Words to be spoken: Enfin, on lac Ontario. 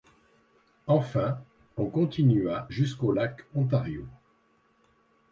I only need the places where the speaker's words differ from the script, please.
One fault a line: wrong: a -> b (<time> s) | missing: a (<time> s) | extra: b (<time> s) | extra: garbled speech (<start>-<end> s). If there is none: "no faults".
extra: continua jusqu'au (1.9 s)